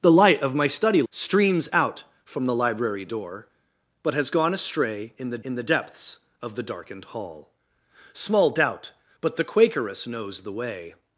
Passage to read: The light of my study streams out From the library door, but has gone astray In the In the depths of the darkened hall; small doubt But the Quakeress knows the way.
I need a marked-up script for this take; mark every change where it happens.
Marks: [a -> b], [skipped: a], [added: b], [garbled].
The light of my study streams out From the library door, but has gone astray In the In the depths of the darkened hall; small doubt But the Quakeress knows the way.